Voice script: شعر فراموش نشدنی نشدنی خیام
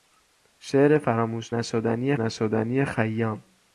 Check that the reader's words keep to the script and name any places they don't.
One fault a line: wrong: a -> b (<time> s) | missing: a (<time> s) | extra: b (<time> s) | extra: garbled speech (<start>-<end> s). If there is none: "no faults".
no faults